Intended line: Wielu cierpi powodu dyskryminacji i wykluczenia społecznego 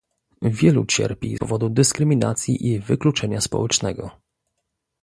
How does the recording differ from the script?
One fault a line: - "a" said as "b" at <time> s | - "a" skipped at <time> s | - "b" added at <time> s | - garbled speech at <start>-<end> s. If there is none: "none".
none